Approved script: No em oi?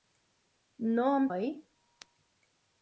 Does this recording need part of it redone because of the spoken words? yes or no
no